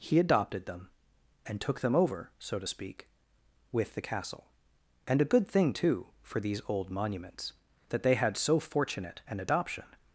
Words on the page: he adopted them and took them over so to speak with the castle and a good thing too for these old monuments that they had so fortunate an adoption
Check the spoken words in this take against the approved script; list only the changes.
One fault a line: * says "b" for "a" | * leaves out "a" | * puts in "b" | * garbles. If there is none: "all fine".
all fine